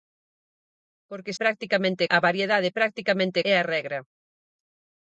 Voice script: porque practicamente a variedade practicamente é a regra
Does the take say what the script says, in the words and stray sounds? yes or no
yes